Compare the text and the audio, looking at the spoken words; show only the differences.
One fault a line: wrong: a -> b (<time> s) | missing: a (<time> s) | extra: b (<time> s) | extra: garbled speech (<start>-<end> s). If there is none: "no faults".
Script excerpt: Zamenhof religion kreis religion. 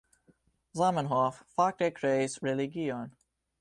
wrong: religion -> fakte (1.6 s)